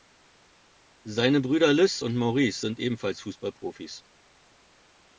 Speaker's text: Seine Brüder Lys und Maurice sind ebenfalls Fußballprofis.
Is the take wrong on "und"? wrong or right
right